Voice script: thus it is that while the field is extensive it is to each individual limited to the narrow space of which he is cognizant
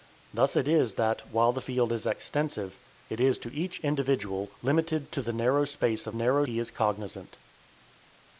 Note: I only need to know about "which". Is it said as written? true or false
false